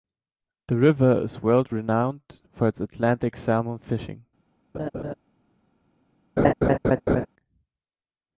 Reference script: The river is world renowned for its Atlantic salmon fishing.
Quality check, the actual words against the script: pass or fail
pass